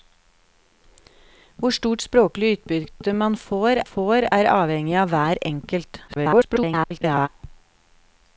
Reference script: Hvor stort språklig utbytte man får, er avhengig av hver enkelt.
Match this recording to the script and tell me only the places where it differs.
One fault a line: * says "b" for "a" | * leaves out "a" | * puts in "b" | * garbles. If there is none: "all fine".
* puts in "får"
* garbles